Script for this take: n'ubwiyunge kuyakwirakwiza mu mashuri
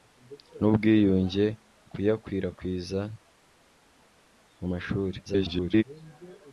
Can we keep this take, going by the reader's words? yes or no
no